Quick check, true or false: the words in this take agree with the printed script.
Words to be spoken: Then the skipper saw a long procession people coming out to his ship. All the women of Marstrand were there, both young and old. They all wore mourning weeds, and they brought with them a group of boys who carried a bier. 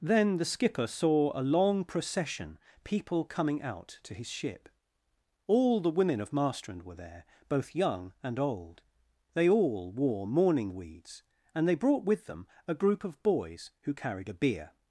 true